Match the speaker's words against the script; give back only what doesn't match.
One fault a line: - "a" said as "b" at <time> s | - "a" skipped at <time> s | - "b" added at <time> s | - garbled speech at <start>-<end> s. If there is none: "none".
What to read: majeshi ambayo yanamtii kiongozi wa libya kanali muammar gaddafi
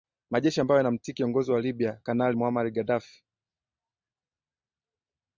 none